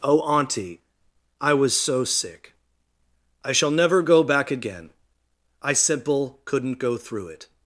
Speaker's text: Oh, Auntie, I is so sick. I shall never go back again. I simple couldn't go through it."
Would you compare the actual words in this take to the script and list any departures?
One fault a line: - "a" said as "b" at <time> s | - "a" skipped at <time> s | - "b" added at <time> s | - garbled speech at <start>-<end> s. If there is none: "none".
- "is" said as "was" at 1.5 s